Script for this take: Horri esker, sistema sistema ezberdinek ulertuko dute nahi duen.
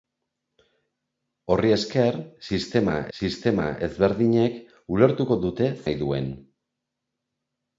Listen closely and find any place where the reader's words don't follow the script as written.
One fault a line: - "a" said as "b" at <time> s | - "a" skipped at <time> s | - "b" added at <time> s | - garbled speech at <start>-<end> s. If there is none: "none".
none